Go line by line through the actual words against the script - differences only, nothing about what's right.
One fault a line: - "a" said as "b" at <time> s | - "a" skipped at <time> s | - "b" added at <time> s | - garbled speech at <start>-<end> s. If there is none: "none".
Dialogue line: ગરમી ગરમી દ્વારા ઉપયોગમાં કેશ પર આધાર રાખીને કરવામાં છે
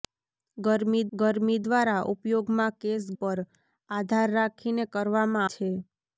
none